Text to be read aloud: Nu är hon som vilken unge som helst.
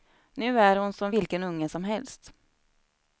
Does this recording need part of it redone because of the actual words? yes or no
no